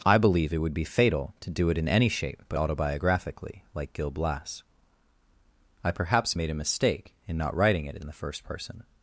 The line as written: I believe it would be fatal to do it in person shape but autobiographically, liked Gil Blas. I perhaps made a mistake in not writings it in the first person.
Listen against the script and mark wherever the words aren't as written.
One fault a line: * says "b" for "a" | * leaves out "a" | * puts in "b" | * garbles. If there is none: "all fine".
* says "any" for "person"
* says "like" for "liked"
* says "writing" for "writings"